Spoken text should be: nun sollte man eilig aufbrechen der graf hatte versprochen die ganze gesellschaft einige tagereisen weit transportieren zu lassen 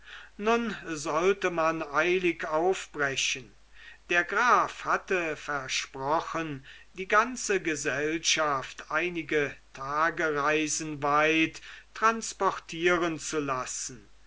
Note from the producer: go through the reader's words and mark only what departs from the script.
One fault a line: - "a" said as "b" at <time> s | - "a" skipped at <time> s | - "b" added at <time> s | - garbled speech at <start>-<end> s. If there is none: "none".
none